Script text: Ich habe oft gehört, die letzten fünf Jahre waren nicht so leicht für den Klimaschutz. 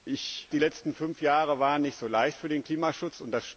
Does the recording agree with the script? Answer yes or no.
no